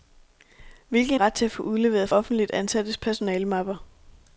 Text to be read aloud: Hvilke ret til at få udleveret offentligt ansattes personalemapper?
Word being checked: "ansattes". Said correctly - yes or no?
yes